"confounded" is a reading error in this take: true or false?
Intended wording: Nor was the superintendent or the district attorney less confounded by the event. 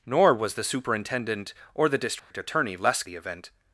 true